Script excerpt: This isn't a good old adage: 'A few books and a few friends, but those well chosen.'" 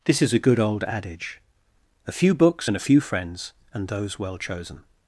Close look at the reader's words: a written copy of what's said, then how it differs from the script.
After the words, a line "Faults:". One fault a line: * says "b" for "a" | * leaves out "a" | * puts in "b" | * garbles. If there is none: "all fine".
This is a good old adage: 'A few books and a few friends, and those well chosen.'"
Faults:
* says "is" for "isn't"
* says "and" for "but"